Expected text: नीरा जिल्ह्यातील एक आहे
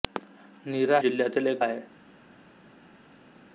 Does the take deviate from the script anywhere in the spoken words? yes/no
no